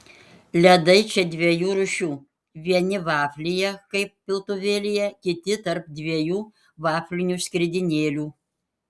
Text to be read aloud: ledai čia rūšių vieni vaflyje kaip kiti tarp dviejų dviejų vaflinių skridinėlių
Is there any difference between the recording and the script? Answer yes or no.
yes